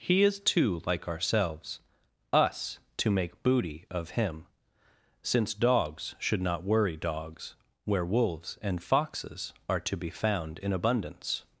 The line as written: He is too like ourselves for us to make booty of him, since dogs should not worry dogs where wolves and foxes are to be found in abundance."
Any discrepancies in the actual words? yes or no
yes